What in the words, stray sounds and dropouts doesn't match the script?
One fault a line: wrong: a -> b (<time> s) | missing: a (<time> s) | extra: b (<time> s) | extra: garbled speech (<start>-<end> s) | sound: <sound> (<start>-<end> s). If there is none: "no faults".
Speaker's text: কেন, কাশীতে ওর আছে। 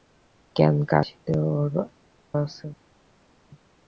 no faults